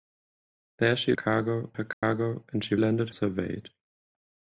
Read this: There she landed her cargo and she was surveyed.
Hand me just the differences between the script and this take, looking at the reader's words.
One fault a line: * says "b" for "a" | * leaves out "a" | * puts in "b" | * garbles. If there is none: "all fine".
* says "cargo" for "landed"
* says "landed" for "was"